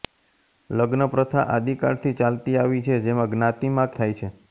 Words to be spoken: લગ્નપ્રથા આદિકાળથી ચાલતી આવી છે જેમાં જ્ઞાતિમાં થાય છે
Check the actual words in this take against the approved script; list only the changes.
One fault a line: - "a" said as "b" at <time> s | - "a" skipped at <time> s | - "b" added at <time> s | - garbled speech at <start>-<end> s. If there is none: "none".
none